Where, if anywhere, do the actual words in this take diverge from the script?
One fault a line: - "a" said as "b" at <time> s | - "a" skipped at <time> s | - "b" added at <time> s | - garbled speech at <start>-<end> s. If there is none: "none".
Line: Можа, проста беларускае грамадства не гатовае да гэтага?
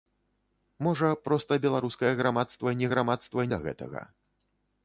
- "гатовае" said as "грамадства" at 2.9 s